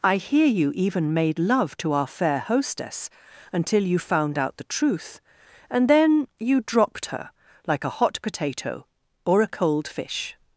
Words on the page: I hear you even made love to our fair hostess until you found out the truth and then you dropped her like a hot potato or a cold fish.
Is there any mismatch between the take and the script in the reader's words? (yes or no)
no